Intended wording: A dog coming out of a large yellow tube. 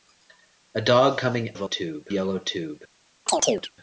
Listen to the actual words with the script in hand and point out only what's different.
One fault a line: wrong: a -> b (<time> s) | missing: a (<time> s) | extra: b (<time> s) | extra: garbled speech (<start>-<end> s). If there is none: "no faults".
missing: out (1.6 s)
wrong: large -> tube (1.6 s)